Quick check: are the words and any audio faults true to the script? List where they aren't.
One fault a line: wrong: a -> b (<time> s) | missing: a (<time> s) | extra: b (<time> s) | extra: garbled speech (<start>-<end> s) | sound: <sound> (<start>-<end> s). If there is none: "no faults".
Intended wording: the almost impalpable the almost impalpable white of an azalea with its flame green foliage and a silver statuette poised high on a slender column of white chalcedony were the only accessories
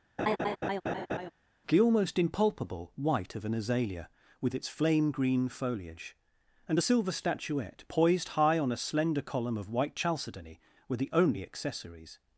sound: laugh (0.2-1.3 s)
missing: the almost impalpable (2.9 s)